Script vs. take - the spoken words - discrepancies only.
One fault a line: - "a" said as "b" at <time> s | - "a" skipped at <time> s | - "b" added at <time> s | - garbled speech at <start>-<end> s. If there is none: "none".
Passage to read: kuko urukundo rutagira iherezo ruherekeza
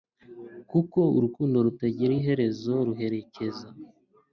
none